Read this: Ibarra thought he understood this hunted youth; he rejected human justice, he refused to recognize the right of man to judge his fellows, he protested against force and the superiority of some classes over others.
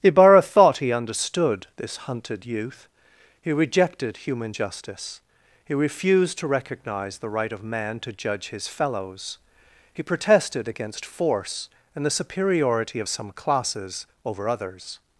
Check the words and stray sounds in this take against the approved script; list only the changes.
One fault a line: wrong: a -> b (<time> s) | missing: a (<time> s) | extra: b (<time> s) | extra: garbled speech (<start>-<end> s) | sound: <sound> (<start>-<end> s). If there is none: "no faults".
no faults